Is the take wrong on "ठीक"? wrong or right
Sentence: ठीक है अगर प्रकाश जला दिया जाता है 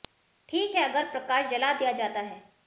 right